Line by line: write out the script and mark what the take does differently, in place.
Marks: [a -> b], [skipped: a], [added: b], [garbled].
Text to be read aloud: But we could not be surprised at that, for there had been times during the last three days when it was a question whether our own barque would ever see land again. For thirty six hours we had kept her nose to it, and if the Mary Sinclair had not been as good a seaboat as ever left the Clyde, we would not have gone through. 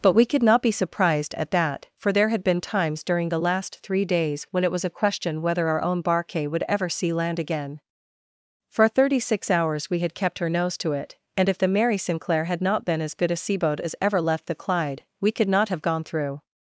But we could not be surprised at that, for there had been times during the last three days when it was a question whether our own barque would ever see land again. For thirty six hours we had kept her nose to it, and if the Mary Sinclair had not been as good a seaboat as ever left the Clyde, we [would -> could] not have gone through.